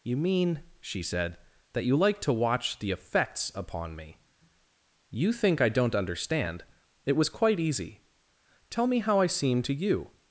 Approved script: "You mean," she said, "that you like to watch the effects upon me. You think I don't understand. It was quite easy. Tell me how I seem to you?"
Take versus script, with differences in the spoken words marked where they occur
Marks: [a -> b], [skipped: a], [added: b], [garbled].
"You mean," she said, "that you like to watch the effects upon me. You think I don't understand. It was quite easy. Tell me how I seem to you?"